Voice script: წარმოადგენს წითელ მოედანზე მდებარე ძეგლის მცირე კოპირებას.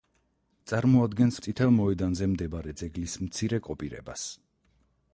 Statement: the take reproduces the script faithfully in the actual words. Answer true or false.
true